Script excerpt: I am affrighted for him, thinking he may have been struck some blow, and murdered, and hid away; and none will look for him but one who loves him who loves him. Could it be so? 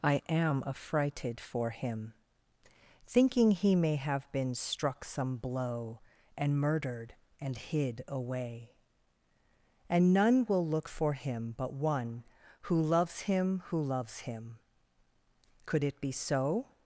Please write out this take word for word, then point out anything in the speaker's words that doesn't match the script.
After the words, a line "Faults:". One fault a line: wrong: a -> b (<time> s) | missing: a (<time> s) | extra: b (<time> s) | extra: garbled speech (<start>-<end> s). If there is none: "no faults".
I am affrighted for him, thinking he may have been struck some blow, and murdered, and hid away; and none will look for him but one who loves him who loves him. Could it be so?
Faults:
no faults